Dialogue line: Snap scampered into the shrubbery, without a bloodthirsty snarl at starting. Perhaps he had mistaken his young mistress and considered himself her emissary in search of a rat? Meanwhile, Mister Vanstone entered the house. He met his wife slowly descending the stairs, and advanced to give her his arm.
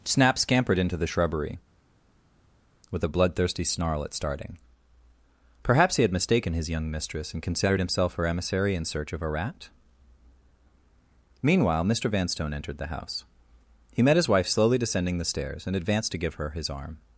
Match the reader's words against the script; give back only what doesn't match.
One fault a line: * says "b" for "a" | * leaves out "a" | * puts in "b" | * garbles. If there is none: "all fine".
* says "with" for "without"